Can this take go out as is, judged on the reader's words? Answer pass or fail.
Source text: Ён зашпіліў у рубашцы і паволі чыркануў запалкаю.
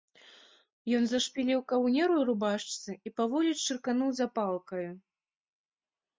fail